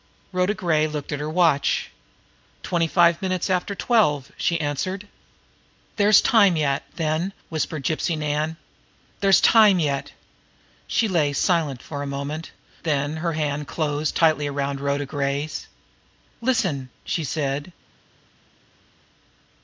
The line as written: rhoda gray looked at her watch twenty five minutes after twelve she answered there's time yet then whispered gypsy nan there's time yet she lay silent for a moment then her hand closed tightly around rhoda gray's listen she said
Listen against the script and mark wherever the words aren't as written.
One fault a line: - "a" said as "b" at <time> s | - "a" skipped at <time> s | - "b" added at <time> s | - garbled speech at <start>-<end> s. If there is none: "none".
none